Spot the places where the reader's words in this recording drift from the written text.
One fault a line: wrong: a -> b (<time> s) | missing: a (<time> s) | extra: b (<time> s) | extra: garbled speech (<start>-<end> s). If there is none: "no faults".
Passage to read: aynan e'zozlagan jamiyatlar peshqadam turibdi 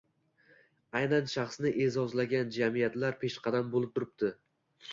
extra: shaxsni (1.3 s)
extra: bo‘lib (3.8 s)